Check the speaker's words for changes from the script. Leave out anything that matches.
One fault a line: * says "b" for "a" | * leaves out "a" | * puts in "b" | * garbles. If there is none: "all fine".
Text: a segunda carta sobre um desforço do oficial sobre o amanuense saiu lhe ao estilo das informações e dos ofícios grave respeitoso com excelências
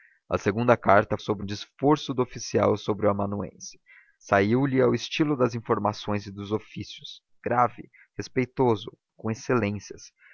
all fine